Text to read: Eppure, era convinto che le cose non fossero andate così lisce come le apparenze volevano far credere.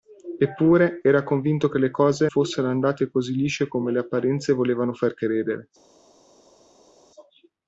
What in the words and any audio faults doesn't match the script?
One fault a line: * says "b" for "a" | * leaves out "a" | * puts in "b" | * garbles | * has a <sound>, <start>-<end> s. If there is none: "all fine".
* leaves out "non"